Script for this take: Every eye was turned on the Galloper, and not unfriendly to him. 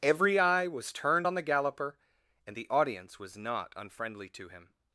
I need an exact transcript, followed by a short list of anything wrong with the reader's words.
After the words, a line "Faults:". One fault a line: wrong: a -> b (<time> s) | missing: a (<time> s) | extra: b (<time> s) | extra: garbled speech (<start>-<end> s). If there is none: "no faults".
Every eye was turned on the Galloper, and the audience was not unfriendly to him.
Faults:
extra: the audience was (2.5 s)